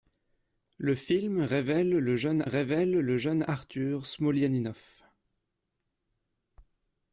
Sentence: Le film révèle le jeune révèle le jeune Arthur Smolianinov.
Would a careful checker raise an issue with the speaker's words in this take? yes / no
no